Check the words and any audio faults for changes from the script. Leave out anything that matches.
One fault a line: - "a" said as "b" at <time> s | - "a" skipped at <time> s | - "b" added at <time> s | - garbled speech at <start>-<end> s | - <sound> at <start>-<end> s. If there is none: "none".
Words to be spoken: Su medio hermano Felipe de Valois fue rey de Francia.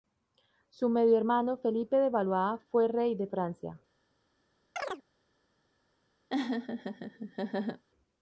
- chirp at 4.8-5.0 s
- laugh at 6.3-7.8 s